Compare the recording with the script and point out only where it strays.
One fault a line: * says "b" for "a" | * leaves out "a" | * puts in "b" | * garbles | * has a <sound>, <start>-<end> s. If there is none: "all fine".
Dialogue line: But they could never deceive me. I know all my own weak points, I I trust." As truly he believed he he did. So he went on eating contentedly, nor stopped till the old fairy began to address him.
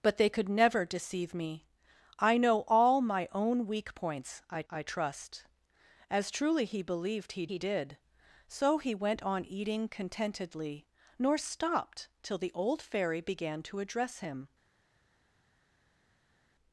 all fine